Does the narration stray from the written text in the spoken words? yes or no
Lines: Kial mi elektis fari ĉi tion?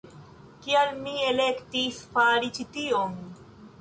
no